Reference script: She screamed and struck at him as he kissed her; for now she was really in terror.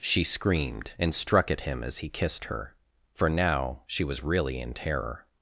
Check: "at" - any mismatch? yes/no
no